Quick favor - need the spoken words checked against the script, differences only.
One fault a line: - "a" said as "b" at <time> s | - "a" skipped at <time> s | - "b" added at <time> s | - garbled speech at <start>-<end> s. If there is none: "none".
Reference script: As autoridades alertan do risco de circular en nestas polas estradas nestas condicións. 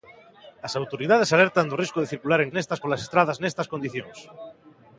none